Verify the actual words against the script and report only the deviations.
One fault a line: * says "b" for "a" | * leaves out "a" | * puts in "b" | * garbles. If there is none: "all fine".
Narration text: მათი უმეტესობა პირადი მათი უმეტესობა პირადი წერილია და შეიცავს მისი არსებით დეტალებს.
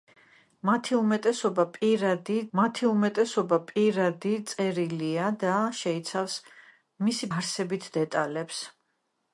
all fine